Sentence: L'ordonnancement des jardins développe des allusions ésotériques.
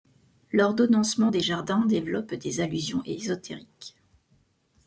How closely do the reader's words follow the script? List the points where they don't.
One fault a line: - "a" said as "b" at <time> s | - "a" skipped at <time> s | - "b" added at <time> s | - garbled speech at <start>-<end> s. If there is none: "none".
none